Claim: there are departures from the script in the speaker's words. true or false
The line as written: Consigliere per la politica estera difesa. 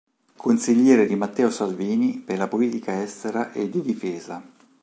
true